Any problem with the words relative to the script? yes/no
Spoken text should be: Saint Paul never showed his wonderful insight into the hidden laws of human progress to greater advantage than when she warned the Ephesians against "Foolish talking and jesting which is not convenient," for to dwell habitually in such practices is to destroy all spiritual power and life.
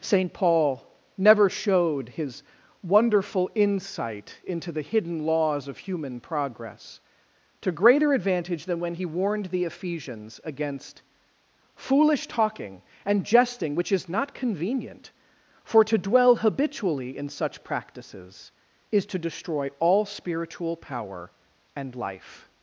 yes